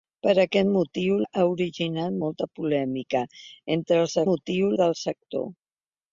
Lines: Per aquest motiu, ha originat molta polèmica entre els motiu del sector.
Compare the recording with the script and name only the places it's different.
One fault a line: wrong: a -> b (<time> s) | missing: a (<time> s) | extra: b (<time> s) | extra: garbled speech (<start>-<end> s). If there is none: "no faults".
no faults